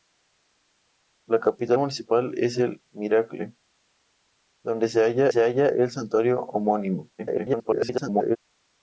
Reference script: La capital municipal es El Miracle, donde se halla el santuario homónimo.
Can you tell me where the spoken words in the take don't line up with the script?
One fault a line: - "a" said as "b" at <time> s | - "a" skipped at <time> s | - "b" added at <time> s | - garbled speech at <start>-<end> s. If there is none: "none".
- "se halla" added at 5.3 s
- garbled speech at 7.2-8.4 s